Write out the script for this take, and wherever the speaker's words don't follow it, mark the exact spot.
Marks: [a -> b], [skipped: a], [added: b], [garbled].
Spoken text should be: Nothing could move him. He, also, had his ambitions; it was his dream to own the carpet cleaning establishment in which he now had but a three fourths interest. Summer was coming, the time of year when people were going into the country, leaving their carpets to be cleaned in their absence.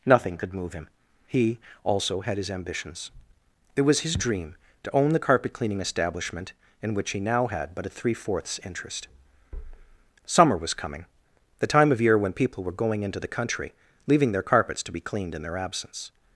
Nothing could move him. He, also, had his ambitions; it was his dream to own the carpet cleaning establishment in which he now had but a three fourths interest. Summer was coming, the time of year when people were going into the country, leaving their carpets to be cleaned in their absence.